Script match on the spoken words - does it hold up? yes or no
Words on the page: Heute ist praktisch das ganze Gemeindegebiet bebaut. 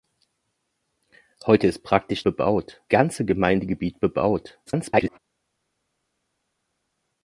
no